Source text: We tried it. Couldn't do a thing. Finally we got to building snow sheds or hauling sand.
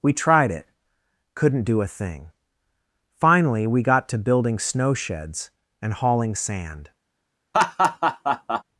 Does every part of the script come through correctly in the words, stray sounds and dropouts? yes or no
no